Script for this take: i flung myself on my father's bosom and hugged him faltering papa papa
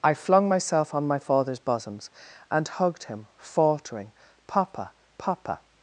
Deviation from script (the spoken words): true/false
true